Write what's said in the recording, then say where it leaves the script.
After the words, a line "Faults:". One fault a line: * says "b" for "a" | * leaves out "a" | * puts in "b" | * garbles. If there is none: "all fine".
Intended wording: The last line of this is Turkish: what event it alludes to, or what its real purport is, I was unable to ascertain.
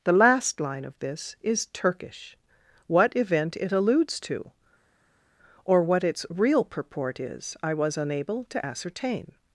The last line of this is Turkish: what event it alludes to, or what its real purport is, I was unable to ascertain.
Faults:
all fine